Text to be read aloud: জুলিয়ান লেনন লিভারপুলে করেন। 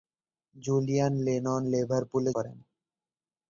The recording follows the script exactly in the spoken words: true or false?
true